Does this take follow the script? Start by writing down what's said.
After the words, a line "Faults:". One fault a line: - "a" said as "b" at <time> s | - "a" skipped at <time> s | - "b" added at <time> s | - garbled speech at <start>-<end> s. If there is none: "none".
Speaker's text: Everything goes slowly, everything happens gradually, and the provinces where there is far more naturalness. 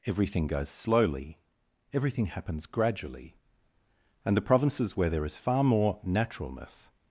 Everything goes slowly, everything happens gradually, and the provinces where there is far more naturalness.
Faults:
none